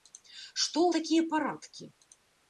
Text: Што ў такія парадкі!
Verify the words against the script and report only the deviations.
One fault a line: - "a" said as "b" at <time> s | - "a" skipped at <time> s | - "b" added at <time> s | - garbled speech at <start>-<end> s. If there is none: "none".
none